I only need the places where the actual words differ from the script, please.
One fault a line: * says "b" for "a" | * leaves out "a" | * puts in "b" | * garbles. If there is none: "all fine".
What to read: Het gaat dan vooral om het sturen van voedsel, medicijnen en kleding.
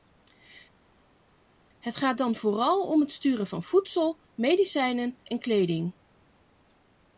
all fine